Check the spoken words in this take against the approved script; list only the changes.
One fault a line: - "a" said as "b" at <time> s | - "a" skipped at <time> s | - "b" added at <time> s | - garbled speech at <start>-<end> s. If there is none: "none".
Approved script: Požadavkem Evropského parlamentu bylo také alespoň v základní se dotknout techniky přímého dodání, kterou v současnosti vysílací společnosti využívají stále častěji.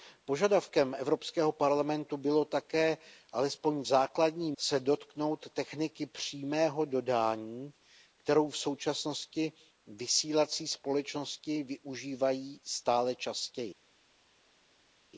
none